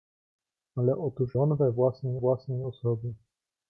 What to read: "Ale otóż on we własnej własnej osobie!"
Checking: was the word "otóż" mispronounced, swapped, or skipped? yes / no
no